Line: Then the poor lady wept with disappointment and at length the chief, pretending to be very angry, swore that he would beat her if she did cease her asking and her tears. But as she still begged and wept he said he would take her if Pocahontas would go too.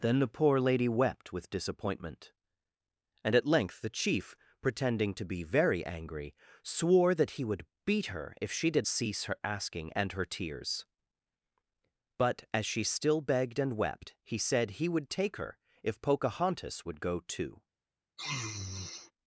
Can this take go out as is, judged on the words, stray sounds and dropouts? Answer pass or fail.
fail